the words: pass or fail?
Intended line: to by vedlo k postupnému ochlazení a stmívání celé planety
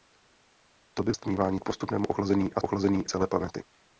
fail